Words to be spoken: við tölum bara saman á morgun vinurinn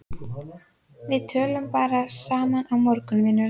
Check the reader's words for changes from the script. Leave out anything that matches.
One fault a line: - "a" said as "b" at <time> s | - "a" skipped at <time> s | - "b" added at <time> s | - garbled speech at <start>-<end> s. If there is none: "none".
none